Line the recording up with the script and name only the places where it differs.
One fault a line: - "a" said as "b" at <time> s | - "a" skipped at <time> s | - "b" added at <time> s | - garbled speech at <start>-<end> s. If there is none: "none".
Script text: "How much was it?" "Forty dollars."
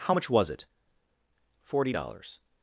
none